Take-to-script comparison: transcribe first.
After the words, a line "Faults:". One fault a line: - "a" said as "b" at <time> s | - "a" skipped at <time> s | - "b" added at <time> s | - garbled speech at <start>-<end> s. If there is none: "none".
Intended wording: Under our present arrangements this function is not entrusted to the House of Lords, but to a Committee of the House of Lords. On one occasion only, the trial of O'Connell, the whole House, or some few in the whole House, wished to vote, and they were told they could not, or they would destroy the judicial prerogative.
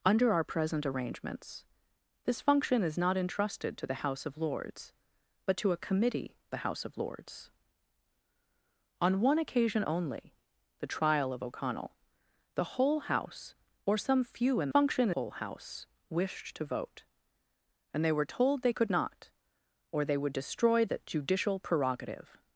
Under our present arrangements this function is not entrusted to the House of Lords, but to a Committee the House of Lords. On one occasion only, the trial of O'Connell, the whole House, or some few in function whole House, wished to vote, and they were told they could not, or they would destroy the judicial prerogative.
Faults:
- "of" skipped at 6.3 s
- "the" said as "function" at 14.7 s